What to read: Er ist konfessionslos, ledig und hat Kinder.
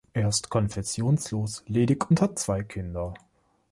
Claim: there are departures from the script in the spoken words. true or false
true